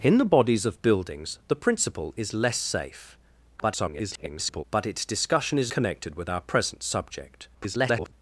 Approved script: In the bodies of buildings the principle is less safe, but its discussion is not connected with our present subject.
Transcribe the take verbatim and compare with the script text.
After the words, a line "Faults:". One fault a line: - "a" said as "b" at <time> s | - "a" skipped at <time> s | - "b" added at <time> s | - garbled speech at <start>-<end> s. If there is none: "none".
In the bodies of buildings the principle is less safe, [garbled] but its discussion is connected with our present subject. [garbled]
Faults:
- garbled speech at 3.6-4.6 s
- "not" skipped at 5.7 s
- garbled speech at 7.5-8.1 s